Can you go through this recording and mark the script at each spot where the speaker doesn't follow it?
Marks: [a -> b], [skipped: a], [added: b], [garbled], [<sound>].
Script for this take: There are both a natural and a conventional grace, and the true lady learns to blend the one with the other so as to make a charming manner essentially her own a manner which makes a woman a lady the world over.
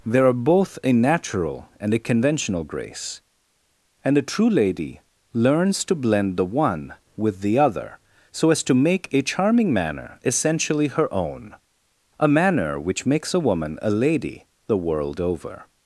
There are both a natural and a conventional grace, and [the -> a] true lady learns to blend the one with the other so as to make a charming manner essentially her own a manner which makes a woman a lady the world over.